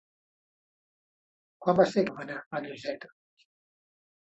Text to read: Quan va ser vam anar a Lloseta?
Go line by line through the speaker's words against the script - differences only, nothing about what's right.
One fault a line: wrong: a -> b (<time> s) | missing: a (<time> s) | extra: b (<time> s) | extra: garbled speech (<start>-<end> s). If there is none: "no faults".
no faults